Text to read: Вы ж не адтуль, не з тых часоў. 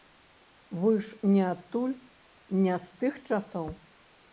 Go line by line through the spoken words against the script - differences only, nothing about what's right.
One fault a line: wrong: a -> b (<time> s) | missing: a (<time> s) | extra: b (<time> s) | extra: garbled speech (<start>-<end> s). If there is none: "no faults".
no faults